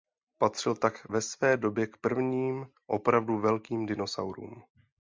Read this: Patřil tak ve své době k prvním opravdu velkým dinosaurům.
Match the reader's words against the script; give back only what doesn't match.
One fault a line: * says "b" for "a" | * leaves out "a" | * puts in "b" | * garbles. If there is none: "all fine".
all fine